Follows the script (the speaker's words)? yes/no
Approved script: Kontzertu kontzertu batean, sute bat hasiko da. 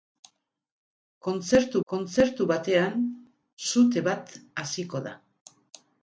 yes